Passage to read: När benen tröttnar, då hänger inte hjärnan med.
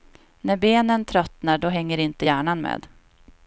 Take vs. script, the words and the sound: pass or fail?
pass